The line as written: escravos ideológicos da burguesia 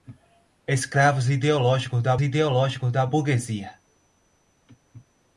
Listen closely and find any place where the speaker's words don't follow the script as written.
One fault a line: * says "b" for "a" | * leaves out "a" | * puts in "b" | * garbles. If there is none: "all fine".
* puts in "ideológicos da"